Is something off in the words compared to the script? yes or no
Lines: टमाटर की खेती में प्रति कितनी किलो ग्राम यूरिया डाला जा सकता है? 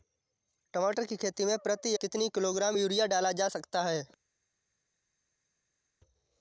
no